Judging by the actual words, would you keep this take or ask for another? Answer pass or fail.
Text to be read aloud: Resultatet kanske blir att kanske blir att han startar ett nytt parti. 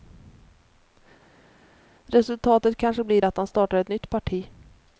fail